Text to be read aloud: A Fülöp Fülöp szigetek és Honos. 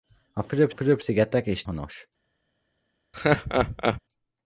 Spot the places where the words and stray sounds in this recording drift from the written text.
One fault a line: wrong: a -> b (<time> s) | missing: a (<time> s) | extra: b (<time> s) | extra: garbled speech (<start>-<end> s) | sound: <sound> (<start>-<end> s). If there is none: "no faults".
sound: laugh (3.1-4.0 s)